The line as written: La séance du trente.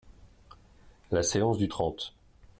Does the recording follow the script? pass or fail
pass